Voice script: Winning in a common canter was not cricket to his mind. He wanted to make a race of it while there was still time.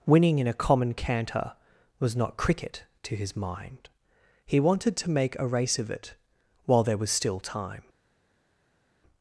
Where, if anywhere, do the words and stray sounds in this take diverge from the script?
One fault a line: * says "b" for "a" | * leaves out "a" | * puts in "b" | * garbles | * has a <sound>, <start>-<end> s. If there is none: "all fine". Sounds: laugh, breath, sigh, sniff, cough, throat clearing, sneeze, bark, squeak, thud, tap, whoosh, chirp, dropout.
all fine